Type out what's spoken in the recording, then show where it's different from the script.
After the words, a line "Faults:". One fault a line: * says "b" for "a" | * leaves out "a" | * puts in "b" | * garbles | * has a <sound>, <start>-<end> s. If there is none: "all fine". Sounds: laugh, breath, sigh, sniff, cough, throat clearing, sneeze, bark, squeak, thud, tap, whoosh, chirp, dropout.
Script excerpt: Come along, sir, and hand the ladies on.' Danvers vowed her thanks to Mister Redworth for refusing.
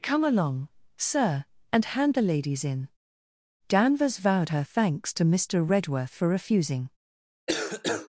Come along, sir, and hand the ladies in.' Danvers vowed her thanks to Mister Redworth for refusing.
Faults:
* says "in" for "on"
* has a cough, 7.5-8.1 s